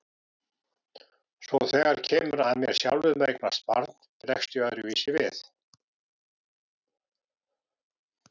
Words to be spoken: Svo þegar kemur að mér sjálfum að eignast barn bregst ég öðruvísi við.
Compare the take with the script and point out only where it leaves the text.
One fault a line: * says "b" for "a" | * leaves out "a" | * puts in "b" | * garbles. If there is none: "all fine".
all fine